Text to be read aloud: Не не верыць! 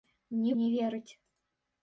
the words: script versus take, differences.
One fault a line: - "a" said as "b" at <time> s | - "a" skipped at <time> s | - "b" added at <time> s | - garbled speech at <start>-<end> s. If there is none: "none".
none